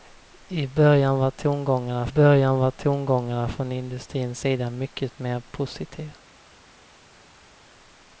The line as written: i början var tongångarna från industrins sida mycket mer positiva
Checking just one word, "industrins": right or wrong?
right